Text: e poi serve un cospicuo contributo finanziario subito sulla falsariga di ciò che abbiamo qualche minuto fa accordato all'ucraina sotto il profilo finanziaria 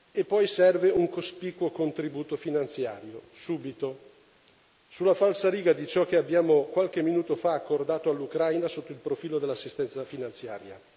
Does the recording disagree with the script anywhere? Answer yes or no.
yes